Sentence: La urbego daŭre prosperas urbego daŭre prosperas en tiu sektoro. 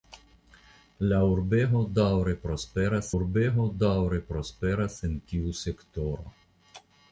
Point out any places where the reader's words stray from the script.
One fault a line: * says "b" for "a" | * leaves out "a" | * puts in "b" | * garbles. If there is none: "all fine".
all fine